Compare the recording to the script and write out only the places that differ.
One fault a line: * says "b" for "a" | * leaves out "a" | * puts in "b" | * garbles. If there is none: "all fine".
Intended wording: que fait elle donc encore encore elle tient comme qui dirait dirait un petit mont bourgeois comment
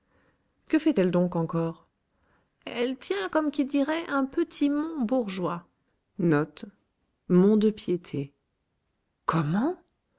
* leaves out "encore"
* leaves out "dirait"